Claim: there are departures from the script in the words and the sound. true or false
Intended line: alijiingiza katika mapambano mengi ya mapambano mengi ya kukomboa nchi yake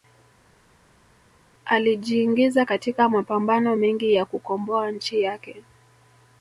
true